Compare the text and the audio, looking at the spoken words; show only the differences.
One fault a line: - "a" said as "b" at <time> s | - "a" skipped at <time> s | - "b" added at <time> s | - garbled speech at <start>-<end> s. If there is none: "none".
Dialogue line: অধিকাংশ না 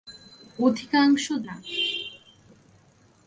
none